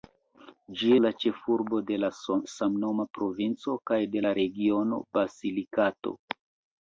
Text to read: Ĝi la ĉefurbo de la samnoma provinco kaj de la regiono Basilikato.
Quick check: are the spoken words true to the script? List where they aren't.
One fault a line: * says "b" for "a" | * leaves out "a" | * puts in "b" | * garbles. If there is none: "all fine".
all fine